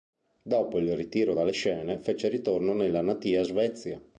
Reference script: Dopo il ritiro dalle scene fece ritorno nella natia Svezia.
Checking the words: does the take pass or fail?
pass